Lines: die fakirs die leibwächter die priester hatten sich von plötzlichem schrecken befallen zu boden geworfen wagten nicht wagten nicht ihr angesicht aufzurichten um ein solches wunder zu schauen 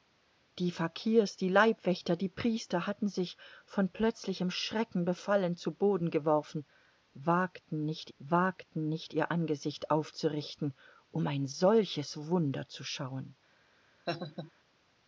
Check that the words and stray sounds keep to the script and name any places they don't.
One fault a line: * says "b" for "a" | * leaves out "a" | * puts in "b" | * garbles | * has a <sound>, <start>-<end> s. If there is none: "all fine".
* has a laugh, 14.1-14.5 s